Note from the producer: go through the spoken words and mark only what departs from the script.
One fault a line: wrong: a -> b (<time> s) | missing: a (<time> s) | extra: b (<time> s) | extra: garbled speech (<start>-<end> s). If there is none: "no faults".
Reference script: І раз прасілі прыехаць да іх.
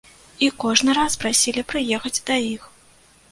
extra: кожны (0.6 s)